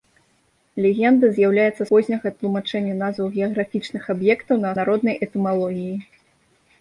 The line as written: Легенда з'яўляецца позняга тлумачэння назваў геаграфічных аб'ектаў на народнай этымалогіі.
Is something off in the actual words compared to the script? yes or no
no